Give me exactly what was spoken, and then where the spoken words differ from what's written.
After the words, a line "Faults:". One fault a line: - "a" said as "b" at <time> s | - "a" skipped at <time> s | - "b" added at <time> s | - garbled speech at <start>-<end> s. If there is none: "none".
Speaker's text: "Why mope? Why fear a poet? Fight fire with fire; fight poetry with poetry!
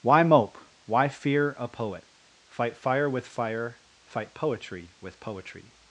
"Why mope? Why fear a poet? Fight fire with fire; fight poetry with poetry!
Faults:
none